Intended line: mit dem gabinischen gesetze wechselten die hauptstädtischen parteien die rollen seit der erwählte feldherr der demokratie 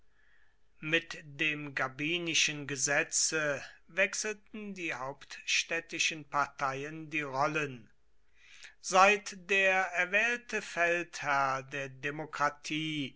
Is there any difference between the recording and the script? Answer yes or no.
no